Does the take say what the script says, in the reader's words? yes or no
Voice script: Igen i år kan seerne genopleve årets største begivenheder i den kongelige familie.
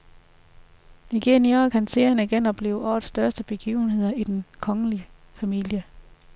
yes